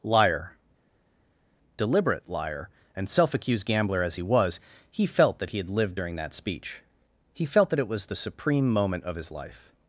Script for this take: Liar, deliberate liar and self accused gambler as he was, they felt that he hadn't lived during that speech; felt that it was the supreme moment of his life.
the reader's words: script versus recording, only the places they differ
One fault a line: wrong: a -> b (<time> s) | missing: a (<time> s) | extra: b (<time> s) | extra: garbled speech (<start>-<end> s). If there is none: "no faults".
wrong: they -> he (4.9 s)
wrong: hadn't -> had (5.6 s)
extra: he (7.3 s)